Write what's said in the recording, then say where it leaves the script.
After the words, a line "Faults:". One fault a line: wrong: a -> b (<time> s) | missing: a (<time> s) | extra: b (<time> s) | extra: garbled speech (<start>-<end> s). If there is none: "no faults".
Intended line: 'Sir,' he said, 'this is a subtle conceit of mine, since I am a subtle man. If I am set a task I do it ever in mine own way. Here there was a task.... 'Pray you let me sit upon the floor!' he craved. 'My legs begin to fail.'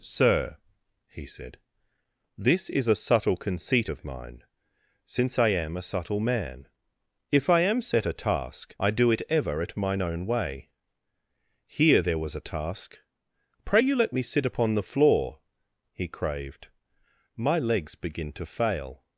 'Sir,' he said, 'this is a subtle conceit of mine, since I am a subtle man. If I am set a task I do it ever at mine own way. Here there was a task.... 'Pray you let me sit upon the floor!' he craved. 'My legs begin to fail.'
Faults:
wrong: in -> at (9.6 s)